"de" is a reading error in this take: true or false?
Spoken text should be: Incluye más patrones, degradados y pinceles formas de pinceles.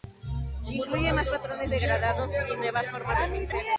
false